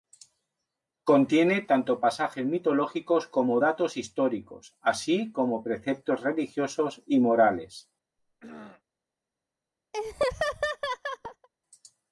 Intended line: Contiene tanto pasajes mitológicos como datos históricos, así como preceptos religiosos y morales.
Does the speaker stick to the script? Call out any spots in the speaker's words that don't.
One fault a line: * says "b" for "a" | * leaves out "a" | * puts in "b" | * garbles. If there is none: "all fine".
all fine